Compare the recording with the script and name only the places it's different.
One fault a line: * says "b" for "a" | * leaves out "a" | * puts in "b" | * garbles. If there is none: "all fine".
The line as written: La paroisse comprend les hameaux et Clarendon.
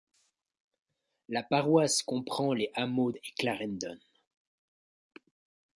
all fine